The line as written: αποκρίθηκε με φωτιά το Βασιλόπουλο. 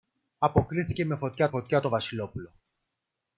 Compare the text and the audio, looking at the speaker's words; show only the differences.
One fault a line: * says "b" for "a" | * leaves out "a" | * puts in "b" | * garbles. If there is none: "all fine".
* puts in "φωτιά"